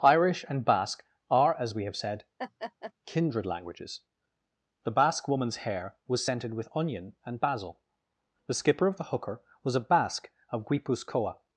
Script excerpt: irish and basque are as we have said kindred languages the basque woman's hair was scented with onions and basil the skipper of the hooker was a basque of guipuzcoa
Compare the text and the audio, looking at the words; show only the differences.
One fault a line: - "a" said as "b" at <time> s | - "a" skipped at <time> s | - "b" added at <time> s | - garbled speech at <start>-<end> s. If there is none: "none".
- "onions" said as "onion" at 6.8 s